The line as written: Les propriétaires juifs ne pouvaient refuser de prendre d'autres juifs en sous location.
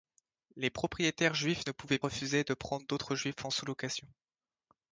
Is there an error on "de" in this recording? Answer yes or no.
no